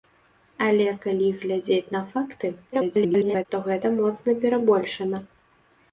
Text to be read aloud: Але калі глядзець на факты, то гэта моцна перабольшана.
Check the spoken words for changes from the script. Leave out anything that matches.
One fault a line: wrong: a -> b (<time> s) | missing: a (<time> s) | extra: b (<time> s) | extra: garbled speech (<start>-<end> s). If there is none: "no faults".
extra: garbled speech (2.7-3.5 s)